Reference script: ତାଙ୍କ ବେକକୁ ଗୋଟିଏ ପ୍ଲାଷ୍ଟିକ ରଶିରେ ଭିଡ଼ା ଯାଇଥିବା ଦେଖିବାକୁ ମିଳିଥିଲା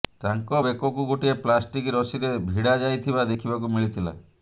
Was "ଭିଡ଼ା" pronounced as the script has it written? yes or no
yes